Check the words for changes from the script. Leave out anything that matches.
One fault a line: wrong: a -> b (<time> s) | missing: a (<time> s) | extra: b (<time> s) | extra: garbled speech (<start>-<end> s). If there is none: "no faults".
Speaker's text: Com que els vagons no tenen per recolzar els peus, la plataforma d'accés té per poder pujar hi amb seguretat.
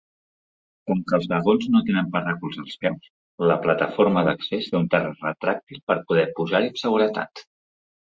extra: un terra retràctil (4.8 s)